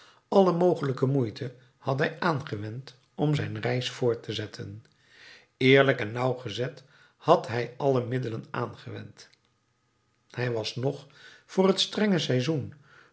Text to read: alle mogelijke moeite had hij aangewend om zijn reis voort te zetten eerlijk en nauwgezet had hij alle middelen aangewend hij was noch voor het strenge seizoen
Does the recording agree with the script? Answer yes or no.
yes